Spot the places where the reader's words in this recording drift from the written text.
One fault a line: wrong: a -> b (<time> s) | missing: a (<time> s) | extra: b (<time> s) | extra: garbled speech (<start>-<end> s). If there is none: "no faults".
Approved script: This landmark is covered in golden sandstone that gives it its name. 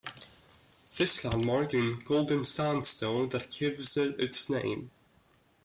missing: is covered (1.8 s)